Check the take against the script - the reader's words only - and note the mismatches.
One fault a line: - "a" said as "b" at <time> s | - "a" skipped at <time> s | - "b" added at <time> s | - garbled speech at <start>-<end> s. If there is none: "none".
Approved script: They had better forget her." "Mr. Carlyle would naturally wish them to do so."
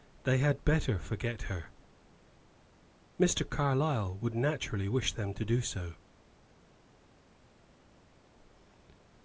none